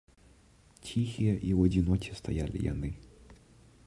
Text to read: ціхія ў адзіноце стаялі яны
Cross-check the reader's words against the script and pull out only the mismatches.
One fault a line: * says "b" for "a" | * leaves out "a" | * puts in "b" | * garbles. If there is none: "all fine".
* puts in "і"